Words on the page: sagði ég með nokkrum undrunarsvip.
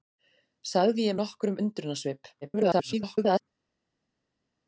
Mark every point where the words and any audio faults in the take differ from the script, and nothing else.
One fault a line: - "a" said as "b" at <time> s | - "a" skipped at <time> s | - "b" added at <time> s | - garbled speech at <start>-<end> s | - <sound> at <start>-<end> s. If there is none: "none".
- "með" skipped at 1.2 s
- garbled speech at 2.4-3.4 s